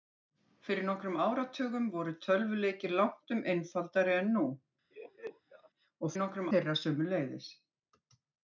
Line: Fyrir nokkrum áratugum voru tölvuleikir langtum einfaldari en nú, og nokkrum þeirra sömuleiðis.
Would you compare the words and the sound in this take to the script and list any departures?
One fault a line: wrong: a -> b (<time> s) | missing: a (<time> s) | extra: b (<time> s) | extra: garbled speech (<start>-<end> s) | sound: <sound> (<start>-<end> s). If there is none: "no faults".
sound: laugh (4.9-5.7 s)